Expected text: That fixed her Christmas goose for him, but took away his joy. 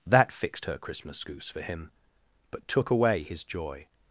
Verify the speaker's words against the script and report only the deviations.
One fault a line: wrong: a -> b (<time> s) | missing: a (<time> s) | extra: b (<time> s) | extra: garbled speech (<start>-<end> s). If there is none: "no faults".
no faults